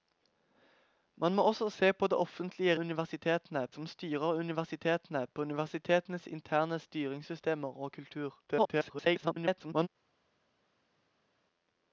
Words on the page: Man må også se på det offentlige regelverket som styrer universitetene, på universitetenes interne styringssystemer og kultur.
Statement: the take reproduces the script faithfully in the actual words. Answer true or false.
false